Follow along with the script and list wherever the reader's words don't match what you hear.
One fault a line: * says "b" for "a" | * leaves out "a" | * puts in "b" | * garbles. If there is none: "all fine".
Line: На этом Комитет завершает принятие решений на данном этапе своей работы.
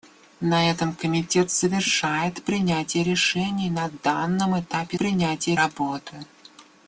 * says "принятие" for "своей"